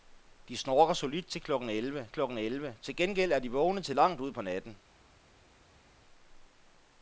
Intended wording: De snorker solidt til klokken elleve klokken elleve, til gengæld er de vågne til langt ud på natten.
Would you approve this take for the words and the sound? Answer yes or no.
yes